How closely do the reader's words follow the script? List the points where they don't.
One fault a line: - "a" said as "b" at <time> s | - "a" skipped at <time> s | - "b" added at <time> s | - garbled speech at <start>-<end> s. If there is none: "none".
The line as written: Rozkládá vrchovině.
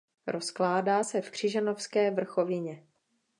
- "se v Křižanovské" added at 1.0 s